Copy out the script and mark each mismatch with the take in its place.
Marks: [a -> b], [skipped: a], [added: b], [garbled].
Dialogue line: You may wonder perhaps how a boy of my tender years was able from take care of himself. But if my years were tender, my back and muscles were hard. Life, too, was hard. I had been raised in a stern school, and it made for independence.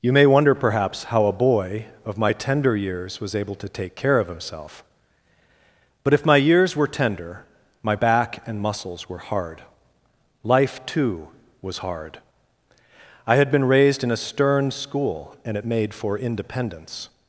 You may wonder perhaps how a boy of my tender years was able [from -> to] take care of himself. But if my years were tender, my back and muscles were hard. Life, too, was hard. I had been raised in a stern school, and it made for independence.